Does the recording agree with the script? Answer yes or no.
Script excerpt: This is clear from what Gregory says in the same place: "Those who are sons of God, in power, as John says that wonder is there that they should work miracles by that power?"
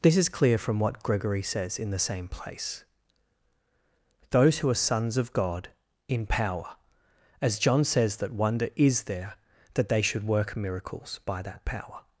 yes